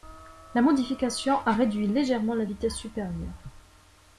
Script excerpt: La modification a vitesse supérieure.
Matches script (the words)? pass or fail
fail